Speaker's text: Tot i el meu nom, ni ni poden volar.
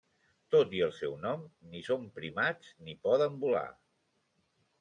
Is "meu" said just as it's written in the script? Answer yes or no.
no